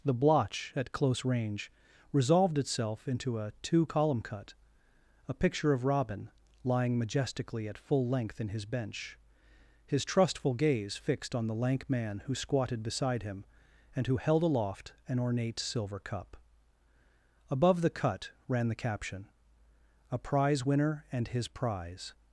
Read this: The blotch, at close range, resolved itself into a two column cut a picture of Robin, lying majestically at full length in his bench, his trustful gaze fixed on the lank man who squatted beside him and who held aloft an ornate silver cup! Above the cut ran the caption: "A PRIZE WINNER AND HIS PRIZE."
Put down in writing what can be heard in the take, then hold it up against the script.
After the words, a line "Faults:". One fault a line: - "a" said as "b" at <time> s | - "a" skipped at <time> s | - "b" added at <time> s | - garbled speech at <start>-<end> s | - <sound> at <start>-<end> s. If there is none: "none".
The blotch, at close range, resolved itself into a two column cut a picture of Robin, lying majestically at full length in his bench, his trustful gaze fixed on the lank man who squatted beside him and who held aloft an ornate silver cup! Above the cut ran the caption: "A PRIZE WINNER AND HIS PRIZE."
Faults:
none